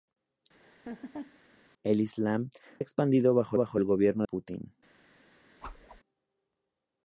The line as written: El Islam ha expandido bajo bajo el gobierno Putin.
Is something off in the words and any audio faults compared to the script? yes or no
yes